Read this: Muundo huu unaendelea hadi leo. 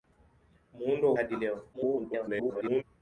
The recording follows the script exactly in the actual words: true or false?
false